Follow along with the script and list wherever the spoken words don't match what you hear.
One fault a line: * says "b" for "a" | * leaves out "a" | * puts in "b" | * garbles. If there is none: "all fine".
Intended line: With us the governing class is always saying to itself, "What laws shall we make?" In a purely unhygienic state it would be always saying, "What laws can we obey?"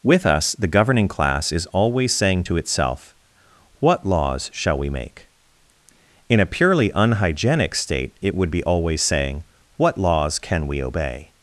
all fine